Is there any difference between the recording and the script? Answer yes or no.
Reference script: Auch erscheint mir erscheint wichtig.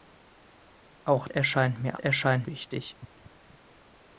no